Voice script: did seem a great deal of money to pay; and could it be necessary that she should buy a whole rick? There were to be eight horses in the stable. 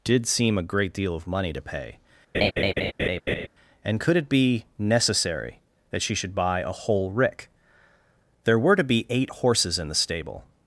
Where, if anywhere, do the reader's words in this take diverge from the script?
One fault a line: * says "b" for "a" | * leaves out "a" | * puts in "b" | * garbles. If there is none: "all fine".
all fine